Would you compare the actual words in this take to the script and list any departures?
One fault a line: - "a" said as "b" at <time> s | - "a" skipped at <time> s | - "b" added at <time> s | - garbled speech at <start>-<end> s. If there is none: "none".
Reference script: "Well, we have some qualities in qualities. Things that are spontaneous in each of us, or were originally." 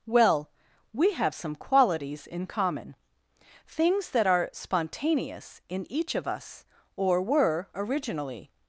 - "qualities" said as "common" at 2.5 s